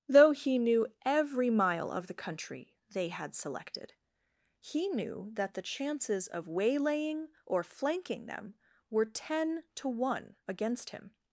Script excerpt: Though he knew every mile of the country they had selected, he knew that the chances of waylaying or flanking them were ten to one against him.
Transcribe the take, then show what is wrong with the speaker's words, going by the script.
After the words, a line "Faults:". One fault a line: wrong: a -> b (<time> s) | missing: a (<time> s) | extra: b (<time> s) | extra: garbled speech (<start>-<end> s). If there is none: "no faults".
Though he knew every mile of the country they had selected, he knew that the chances of waylaying or flanking them were ten to one against him.
Faults:
no faults